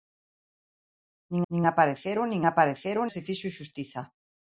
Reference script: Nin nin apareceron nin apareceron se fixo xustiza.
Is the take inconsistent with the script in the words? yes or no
no